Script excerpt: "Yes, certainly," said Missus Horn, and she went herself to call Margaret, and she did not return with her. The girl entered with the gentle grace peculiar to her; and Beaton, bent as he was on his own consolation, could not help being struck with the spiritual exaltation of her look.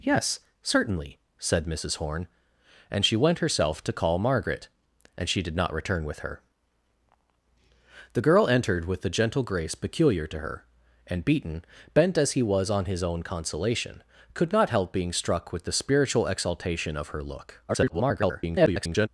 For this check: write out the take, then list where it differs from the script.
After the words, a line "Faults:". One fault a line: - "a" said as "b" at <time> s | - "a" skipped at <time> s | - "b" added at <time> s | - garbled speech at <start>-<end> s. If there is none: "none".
"Yes, certainly," said Missus Horn, and she went herself to call Margaret, and she did not return with her. The girl entered with the gentle grace peculiar to her; and Beaton, bent as he was on his own consolation, could not help being struck with the spiritual exaltation of her look. [garbled]
Faults:
- garbled speech at 17.7-19.1 s